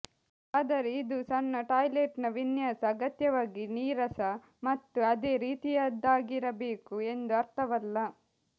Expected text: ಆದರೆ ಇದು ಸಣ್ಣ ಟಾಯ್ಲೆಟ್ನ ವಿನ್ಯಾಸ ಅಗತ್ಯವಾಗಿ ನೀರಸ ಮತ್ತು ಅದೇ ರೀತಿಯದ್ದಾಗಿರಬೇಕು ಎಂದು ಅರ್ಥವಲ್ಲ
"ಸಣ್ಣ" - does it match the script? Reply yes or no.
yes